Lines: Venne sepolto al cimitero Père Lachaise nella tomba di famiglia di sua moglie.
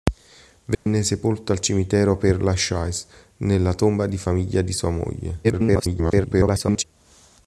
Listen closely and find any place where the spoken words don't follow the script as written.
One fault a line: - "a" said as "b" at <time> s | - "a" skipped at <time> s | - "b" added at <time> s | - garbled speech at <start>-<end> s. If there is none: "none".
- garbled speech at 5.4-6.8 s